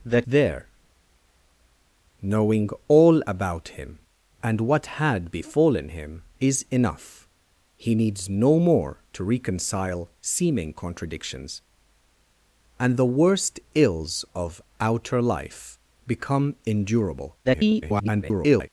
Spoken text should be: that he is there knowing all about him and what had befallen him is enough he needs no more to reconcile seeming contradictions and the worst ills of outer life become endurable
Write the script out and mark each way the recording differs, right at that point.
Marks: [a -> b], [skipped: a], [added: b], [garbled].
that [skipped: he is] there knowing all about him and what had befallen him is enough he needs no more to reconcile seeming contradictions and the worst ills of outer life become endurable [garbled]